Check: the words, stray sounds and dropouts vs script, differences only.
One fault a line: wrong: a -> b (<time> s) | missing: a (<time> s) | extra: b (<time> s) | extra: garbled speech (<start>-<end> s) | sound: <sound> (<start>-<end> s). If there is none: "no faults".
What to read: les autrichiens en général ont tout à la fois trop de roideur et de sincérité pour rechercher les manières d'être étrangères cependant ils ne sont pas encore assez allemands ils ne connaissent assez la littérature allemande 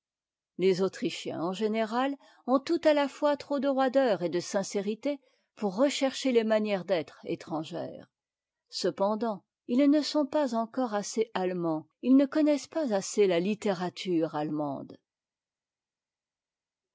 extra: pas (12.7 s)